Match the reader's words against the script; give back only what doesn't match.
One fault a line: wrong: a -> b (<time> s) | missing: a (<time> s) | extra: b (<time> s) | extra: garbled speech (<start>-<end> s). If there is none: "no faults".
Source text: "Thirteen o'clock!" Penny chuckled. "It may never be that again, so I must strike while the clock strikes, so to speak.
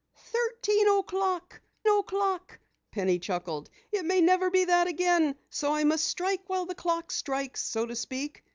extra: o'clock (1.9 s)